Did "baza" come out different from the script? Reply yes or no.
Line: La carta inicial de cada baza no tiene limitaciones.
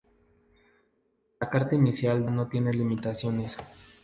yes